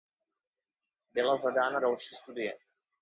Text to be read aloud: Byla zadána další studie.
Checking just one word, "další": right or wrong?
right